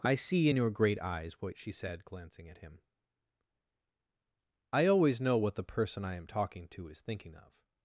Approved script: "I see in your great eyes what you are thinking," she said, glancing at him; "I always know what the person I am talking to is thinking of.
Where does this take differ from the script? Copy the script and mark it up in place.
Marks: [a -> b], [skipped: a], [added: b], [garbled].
"I see in your great eyes what [skipped: you are thinking,"] she said, glancing at him; "I always know what the person I am talking to is thinking of.